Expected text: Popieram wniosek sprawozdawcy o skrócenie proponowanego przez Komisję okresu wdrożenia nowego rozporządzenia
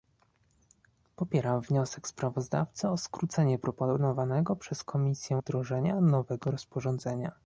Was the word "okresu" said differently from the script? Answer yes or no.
yes